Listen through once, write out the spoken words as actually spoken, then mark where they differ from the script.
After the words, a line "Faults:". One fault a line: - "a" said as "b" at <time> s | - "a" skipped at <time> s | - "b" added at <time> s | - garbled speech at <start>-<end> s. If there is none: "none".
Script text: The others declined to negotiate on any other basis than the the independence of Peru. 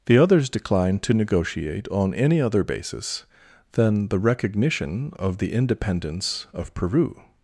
The others declined to negotiate on any other basis than the recognition of the independence of Peru.
Faults:
- "recognition of" added at 4.2 s